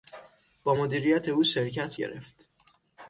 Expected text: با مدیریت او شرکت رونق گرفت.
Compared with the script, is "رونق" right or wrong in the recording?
wrong